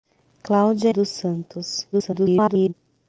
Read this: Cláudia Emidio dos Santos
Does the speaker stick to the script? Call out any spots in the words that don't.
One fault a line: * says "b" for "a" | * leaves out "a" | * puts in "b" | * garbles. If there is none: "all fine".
* leaves out "Emidio"
* garbles